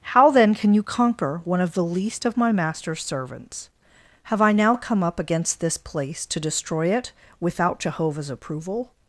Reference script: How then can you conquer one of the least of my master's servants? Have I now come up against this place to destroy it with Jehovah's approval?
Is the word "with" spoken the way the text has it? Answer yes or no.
no